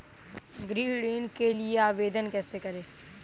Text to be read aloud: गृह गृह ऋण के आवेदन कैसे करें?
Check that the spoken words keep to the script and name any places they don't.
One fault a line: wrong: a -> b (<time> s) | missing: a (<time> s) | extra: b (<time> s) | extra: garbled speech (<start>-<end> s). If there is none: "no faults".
missing: गृह (0.9 s)
extra: लिए (1.5 s)